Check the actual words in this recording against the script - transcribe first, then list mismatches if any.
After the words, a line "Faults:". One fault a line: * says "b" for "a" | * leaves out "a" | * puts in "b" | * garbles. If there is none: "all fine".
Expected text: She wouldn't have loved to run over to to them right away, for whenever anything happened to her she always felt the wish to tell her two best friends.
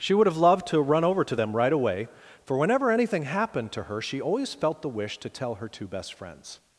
She would have loved to run over to them right away, for whenever anything happened to her she always felt the wish to tell her two best friends.
Faults:
* says "would" for "wouldn't"
* leaves out "to"